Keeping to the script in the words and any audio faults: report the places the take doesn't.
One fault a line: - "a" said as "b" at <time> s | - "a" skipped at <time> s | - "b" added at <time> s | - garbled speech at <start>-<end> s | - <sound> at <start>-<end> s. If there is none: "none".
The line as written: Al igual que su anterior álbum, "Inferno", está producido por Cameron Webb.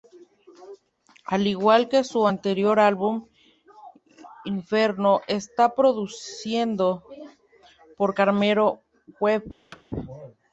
- thud at 9.7-9.8 s